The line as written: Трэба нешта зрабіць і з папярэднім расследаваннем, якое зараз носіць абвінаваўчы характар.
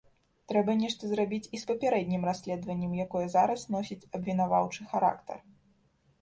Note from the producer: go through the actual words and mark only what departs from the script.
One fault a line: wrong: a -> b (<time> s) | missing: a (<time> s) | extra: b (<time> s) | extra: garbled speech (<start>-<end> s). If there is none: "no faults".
no faults